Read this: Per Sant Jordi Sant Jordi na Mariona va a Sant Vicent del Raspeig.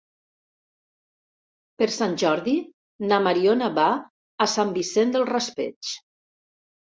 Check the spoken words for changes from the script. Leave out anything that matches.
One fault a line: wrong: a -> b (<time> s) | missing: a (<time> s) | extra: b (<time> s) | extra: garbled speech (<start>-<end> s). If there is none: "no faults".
missing: Sant Jordi (2.5 s)